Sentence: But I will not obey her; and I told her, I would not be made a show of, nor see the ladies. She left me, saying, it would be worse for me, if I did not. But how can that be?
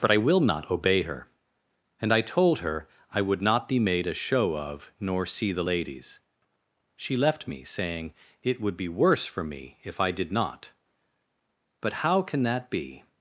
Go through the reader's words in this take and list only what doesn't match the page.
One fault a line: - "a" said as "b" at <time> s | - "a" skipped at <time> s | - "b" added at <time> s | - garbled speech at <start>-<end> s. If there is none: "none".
none